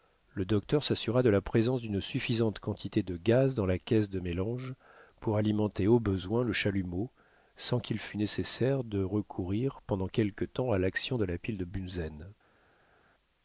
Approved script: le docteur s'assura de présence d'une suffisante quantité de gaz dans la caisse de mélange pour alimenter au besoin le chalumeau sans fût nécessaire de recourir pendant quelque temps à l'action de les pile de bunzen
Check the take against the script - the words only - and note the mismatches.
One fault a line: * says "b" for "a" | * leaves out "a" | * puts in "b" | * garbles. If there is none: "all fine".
* puts in "la"
* puts in "qu'il"
* says "la" for "les"